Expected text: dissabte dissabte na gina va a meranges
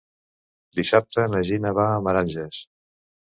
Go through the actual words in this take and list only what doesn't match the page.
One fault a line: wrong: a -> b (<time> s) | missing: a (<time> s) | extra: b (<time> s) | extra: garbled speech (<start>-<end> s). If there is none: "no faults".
missing: dissabte (1.2 s)